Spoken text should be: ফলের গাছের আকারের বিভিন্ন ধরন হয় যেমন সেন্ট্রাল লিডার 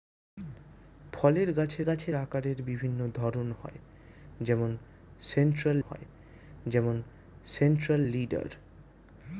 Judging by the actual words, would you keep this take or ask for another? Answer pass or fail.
fail